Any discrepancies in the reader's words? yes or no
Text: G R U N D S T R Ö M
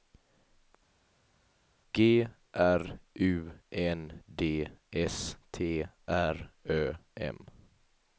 no